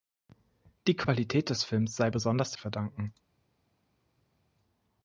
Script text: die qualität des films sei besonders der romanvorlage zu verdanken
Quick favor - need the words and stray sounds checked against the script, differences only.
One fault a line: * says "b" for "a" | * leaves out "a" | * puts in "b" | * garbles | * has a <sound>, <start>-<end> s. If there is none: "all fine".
* leaves out "der romanvorlage zu"